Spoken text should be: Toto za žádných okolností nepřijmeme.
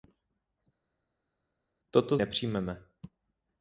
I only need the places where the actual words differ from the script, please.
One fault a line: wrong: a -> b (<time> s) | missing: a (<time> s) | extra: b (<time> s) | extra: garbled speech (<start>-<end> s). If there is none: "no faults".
missing: za žádných okolností (2.2 s)